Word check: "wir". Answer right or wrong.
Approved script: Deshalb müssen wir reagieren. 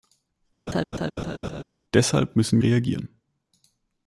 wrong